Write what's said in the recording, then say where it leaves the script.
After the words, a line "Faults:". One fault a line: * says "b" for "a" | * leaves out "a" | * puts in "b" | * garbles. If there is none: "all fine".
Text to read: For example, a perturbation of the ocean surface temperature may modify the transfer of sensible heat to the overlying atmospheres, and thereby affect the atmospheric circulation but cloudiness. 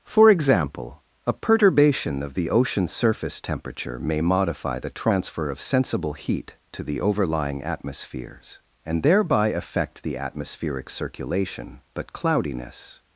For example, a perturbation of the ocean surface temperature may modify the transfer of sensible heat to the overlying atmospheres, and thereby affect the atmospheric circulation but cloudiness.
Faults:
all fine